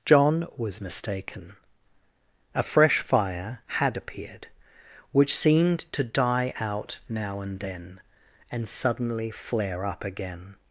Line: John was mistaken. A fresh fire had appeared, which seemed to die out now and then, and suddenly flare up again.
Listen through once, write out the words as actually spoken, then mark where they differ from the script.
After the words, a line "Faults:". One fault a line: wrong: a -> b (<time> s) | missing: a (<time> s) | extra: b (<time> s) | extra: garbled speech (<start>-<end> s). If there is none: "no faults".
John was mistaken. A fresh fire had appeared, which seemed to die out now and then, and suddenly flare up again.
Faults:
no faults